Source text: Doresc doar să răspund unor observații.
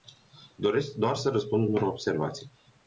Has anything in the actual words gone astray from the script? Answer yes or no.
no